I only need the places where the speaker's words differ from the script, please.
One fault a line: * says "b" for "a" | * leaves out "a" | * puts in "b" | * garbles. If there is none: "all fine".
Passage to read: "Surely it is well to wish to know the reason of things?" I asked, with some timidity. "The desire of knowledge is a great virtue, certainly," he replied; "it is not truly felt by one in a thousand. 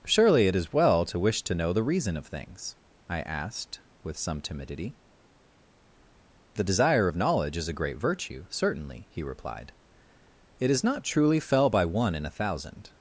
* says "fell" for "felt"